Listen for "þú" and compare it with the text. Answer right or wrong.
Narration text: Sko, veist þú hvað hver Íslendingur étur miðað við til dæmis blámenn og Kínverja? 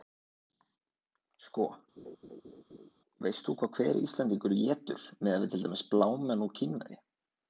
right